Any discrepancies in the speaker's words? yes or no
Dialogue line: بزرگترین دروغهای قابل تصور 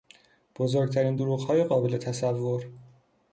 no